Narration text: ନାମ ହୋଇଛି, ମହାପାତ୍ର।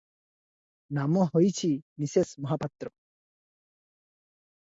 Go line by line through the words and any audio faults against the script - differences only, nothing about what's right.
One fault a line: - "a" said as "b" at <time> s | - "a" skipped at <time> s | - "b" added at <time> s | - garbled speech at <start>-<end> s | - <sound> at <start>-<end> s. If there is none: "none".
- "ମିସେସ୍" added at 2.0 s